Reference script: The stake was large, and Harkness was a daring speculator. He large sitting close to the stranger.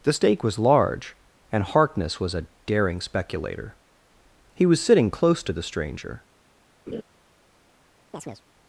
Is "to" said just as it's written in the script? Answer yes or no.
yes